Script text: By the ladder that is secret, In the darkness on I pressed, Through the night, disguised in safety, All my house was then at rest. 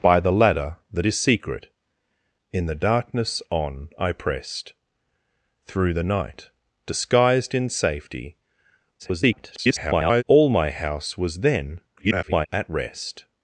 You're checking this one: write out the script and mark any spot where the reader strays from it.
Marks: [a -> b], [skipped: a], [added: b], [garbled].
By the ladder that is secret, In the darkness on I pressed, Through the night, disguised in safety, [garbled] All my house was then [garbled] at rest.